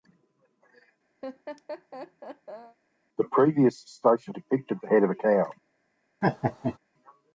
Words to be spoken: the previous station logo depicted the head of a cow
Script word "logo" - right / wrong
wrong